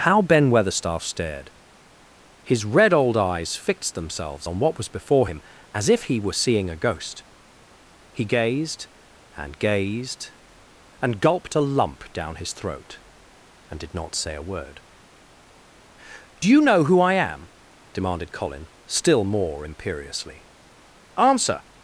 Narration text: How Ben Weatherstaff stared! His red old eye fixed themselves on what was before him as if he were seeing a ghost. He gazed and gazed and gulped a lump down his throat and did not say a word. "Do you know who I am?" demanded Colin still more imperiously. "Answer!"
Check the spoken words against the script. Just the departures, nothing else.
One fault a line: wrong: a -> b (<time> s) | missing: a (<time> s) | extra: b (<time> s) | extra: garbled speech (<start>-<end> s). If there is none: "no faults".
wrong: eye -> eyes (3.1 s)